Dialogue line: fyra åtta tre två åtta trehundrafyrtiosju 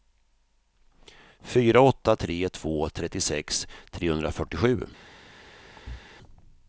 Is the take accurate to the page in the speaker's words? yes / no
no